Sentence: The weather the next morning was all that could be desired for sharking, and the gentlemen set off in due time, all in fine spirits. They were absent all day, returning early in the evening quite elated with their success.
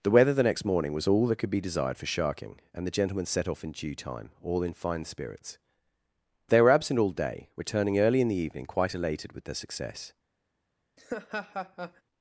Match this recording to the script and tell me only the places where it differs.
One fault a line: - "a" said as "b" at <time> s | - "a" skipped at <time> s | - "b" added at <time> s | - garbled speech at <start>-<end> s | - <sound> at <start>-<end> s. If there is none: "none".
- laugh at 11.0-12.0 s